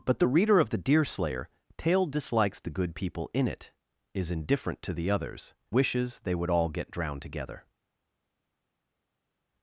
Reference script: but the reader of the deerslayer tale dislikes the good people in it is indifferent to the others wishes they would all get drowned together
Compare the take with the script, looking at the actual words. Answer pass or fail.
pass